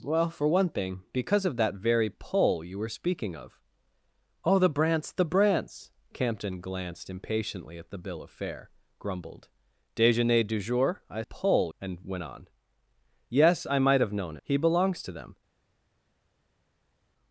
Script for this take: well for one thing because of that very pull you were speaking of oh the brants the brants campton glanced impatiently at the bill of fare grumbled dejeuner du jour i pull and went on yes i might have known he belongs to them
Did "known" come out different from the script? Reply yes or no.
no